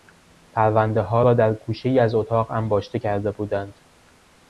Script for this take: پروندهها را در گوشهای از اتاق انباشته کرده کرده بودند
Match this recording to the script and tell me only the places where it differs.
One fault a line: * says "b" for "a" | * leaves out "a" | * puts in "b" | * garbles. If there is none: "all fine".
* leaves out "کرده"